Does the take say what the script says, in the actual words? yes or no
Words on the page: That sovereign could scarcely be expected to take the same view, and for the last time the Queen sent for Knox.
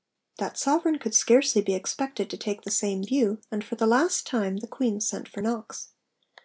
yes